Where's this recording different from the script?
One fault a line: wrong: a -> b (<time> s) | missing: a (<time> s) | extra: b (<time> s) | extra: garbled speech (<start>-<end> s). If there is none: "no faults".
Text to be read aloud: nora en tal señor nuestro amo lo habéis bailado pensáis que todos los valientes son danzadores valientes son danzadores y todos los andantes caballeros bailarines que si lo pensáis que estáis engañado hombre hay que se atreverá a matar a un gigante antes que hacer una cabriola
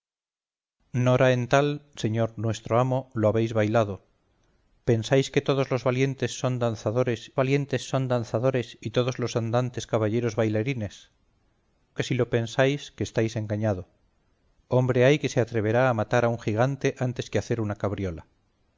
no faults